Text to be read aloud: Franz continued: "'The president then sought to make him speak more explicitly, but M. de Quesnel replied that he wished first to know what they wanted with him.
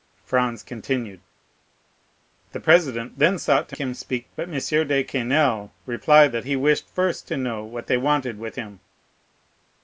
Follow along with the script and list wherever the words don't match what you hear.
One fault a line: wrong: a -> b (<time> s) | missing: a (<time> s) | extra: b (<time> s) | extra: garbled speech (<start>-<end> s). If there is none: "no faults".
missing: make (3.8 s)
missing: more explicitly (4.3 s)